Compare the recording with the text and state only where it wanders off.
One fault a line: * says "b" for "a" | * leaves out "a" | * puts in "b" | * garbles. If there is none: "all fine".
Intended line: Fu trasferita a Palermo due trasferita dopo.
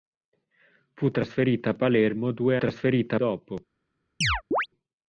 all fine